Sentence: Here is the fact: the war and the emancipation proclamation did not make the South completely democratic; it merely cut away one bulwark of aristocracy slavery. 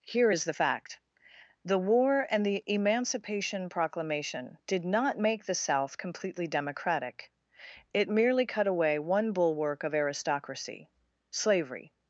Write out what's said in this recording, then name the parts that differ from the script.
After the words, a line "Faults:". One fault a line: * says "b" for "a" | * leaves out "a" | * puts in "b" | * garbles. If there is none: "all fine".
Here is the fact: the war and the emancipation proclamation did not make the South completely democratic; it merely cut away one bulwark of aristocracy slavery.
Faults:
all fine